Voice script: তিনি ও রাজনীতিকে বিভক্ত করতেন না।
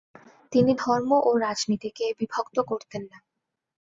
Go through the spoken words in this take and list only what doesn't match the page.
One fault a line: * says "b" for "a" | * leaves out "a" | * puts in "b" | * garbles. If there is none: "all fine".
* puts in "ধর্ম"